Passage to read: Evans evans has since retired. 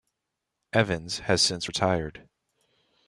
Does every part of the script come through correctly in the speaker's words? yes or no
no